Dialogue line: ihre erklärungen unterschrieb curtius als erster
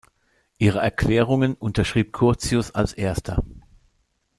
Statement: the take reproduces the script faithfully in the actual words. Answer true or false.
true